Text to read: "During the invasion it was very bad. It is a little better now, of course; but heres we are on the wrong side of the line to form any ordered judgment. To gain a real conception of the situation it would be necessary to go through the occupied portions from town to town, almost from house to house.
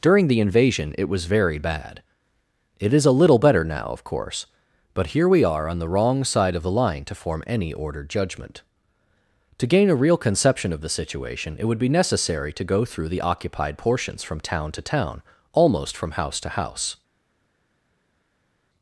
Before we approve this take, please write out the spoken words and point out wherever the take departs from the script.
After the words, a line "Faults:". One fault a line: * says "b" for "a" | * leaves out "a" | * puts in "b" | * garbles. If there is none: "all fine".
"During the invasion it was very bad. It is a little better now, of course; but here we are on the wrong side of the line to form any ordered judgment. To gain a real conception of the situation it would be necessary to go through the occupied portions from town to town, almost from house to house.
Faults:
* says "here" for "heres"